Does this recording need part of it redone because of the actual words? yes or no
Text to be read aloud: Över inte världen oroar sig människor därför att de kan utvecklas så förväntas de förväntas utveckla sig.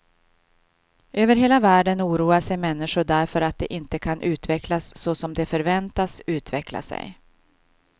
yes